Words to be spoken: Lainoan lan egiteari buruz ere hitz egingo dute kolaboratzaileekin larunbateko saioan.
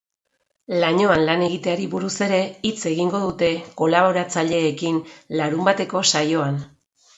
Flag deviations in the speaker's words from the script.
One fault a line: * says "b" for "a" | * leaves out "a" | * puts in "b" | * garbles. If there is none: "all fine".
all fine